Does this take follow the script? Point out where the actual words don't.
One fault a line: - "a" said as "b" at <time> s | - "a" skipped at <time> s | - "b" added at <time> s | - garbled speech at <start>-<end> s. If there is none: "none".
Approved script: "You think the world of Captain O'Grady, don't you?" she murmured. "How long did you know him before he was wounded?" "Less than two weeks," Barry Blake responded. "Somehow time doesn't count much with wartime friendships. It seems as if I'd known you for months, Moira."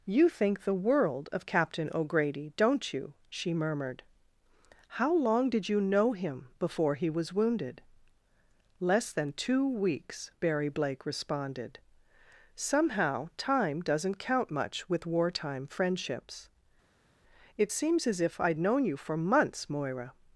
none